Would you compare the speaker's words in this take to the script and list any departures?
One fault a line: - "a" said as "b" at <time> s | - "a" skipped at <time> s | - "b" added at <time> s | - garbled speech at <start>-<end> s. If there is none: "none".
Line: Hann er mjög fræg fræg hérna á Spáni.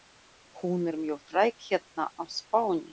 - "Hann" said as "Hún" at 0.6 s
- "fræg" skipped at 1.5 s